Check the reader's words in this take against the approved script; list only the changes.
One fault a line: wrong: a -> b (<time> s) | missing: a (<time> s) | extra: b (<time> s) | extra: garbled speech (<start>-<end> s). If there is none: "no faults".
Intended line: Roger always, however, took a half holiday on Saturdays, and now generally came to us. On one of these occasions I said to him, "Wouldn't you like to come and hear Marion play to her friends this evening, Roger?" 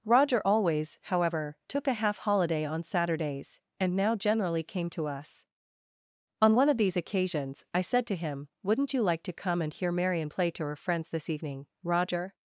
no faults